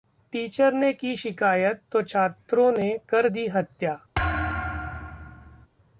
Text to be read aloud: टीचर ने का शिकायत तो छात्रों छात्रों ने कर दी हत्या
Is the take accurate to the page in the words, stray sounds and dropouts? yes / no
no